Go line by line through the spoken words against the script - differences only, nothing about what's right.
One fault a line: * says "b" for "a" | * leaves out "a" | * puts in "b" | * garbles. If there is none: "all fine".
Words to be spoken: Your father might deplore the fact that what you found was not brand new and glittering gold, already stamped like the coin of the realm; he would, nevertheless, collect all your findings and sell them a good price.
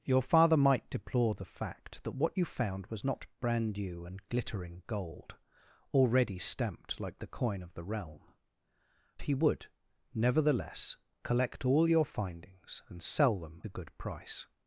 all fine